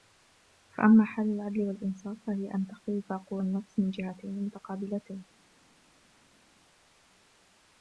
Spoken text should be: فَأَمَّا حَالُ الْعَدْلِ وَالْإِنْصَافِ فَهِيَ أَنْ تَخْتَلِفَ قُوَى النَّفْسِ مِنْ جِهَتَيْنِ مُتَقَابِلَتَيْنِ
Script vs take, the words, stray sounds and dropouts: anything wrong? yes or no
no